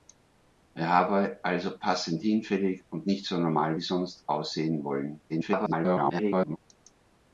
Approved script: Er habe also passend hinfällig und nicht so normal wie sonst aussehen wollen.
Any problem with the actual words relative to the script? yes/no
yes